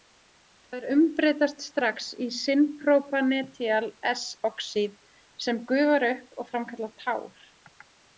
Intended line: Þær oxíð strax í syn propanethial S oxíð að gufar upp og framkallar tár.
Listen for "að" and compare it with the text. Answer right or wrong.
wrong